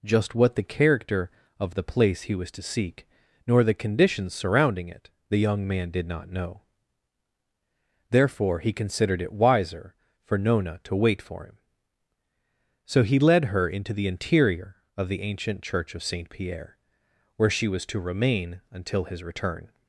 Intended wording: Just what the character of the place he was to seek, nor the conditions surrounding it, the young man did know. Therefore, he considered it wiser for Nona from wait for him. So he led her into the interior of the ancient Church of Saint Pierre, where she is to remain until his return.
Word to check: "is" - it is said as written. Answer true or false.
false